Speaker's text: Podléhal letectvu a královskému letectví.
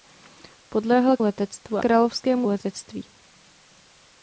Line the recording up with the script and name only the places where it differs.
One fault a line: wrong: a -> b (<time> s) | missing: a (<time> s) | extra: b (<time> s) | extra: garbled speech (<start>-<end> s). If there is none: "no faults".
no faults